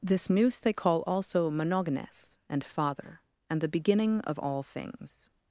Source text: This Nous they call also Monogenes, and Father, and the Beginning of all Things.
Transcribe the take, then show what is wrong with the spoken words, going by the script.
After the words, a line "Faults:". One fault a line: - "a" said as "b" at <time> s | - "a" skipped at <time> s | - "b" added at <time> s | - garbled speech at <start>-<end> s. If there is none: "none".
This Nous they call also Monogenes, and Father, and the Beginning of all Things.
Faults:
none